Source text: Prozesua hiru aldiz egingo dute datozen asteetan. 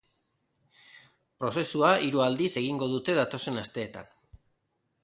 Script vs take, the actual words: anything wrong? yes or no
no